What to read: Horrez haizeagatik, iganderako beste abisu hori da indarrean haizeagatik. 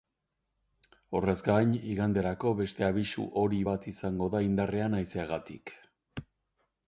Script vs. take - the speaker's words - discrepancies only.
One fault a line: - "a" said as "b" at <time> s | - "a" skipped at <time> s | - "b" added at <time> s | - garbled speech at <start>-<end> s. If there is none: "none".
- "haizeagatik" said as "gain" at 1.5 s
- "bat izango" added at 3.7 s